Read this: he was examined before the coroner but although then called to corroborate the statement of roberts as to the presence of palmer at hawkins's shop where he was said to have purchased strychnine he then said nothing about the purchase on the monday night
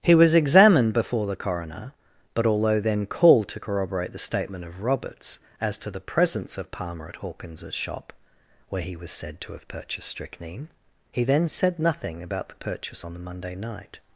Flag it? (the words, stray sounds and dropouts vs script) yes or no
no